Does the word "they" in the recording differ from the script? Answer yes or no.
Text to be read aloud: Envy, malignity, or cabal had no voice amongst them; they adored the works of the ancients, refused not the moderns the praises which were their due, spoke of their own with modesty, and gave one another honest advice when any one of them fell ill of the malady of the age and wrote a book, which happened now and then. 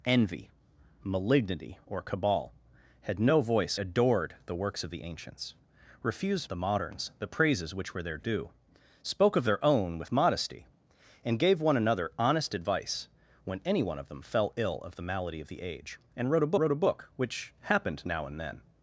yes